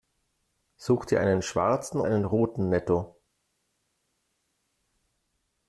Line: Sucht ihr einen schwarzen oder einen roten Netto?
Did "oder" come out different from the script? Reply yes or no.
yes